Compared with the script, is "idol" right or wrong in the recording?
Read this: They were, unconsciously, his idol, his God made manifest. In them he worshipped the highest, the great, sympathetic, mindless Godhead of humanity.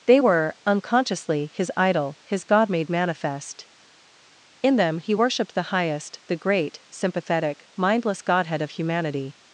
right